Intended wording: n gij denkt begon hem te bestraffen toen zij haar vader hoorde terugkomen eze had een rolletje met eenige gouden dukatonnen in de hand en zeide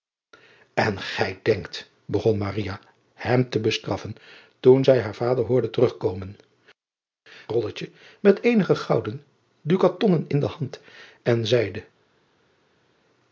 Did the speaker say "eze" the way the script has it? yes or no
no